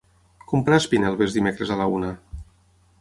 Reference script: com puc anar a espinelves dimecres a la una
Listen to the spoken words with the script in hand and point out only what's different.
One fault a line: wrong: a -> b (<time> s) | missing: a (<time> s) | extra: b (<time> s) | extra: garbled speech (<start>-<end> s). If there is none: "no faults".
missing: puc (0.6 s)